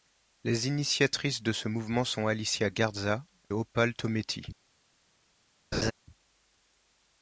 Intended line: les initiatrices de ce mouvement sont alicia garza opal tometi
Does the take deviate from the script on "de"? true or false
false